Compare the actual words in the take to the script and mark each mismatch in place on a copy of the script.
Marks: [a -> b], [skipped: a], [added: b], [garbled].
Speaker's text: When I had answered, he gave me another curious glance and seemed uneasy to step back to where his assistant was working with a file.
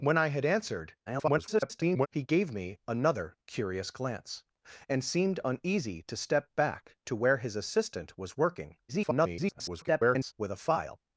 When I had answered, [garbled] he gave me another curious glance and seemed uneasy to step back to where his assistant was working [garbled] with a file.